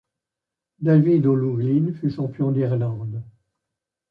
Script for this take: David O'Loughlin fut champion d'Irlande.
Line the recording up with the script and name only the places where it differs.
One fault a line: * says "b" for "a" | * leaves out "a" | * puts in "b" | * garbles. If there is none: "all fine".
all fine